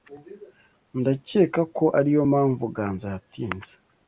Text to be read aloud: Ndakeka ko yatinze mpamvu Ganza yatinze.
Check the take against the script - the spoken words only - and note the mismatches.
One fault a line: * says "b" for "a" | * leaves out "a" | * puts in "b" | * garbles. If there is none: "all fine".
* says "ariyo" for "yatinze"